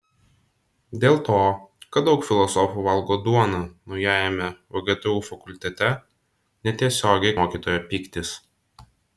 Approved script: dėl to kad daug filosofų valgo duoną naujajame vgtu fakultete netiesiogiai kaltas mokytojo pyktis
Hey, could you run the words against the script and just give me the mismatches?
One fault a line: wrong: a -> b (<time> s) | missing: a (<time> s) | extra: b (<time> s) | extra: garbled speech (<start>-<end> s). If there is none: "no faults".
missing: kaltas (7.3 s)